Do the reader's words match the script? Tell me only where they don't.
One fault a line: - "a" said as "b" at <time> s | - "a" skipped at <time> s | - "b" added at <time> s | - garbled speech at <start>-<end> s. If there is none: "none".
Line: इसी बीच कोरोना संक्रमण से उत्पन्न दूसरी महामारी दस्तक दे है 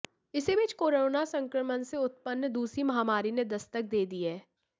- "ने" added at 3.3 s
- "दी" added at 4.0 s